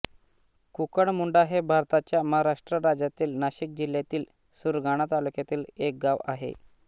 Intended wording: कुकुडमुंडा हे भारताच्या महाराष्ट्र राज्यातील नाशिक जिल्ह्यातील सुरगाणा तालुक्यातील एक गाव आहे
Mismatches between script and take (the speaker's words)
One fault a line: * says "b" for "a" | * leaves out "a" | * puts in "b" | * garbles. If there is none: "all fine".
all fine